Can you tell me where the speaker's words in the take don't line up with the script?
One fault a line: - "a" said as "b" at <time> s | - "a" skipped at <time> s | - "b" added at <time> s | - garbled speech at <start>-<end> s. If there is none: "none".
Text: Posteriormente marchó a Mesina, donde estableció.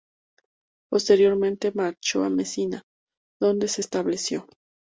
- "se" added at 3.7 s